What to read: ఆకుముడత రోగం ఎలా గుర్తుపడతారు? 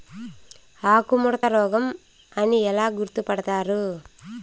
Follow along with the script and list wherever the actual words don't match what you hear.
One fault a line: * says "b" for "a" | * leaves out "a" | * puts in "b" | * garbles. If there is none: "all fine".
* puts in "అని"